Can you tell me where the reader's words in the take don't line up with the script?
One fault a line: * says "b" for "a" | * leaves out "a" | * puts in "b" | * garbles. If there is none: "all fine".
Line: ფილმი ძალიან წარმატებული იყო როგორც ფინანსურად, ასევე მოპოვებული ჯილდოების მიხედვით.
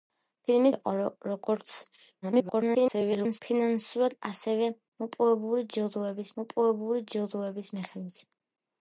* leaves out "ძალიან წარმატებული"
* garbles
* puts in "მოპოვებული ჯილდოების"